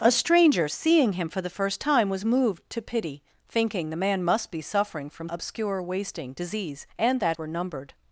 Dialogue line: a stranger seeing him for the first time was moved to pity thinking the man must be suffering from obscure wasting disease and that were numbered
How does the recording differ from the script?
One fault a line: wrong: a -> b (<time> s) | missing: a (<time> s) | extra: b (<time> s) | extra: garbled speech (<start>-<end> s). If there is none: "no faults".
no faults